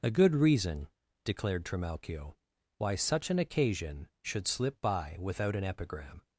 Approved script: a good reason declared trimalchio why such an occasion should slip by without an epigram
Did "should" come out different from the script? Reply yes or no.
no